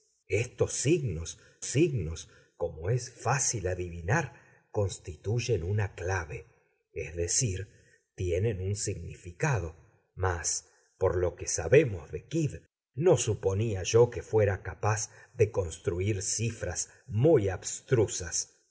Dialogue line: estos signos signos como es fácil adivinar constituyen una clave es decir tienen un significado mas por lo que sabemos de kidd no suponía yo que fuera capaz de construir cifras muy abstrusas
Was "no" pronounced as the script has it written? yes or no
yes